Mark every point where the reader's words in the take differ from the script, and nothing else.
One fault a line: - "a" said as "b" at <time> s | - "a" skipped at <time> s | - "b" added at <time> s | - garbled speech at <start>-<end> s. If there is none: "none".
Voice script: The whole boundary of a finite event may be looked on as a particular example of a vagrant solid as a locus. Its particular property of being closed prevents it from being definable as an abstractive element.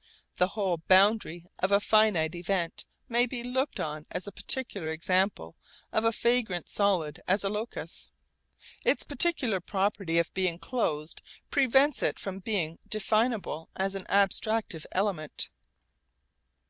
none